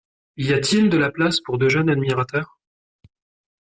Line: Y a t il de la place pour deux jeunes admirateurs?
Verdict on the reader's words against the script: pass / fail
pass